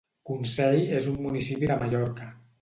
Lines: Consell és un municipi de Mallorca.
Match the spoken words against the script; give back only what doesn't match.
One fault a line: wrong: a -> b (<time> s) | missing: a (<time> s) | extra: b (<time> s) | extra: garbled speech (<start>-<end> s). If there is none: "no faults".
no faults